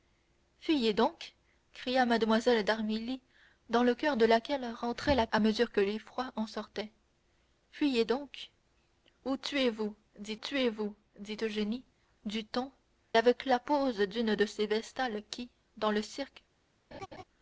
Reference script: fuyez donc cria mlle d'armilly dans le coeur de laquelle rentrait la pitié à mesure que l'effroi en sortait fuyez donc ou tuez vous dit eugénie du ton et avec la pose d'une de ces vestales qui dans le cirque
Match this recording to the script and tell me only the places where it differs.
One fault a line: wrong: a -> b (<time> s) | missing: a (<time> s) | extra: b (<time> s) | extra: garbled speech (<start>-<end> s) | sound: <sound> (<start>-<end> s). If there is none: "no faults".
missing: pitié (5.3 s)
extra: tuez vous dit (10.4 s)
missing: et (12.7 s)
sound: laugh (16.9-17.2 s)